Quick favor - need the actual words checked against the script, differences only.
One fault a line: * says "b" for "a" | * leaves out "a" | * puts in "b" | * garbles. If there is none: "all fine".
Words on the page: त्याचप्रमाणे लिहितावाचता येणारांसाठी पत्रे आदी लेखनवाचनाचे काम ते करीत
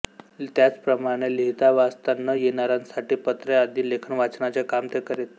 * puts in "न"